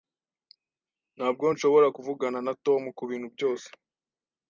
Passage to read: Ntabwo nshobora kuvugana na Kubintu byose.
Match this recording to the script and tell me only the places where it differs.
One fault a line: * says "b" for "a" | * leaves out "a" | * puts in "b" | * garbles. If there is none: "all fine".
* puts in "Tom"